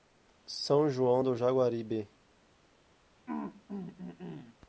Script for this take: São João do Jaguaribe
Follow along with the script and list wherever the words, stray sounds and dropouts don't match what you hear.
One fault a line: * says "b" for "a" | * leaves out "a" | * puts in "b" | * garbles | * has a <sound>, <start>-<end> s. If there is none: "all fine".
* has a throat clearing, 3.3-4.6 s